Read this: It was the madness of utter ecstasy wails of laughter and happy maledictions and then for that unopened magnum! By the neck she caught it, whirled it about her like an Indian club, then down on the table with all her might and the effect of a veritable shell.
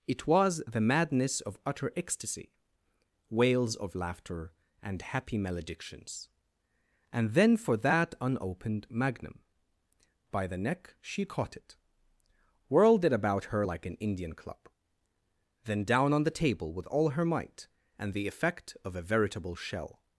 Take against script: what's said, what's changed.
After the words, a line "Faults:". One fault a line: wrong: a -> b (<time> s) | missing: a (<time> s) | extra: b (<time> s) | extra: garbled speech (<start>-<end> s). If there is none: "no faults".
It was the madness of utter ecstasy wails of laughter and happy maledictions and then for that unopened magnum! By the neck she caught it, whirled it about her like an Indian club, then down on the table with all her might and the effect of a veritable shell.
Faults:
no faults